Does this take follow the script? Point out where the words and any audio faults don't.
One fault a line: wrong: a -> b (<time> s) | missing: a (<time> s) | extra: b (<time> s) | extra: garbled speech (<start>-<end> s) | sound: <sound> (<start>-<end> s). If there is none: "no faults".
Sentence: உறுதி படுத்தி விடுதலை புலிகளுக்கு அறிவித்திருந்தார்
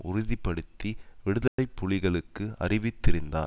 sound: dropout (1.5-1.6 s)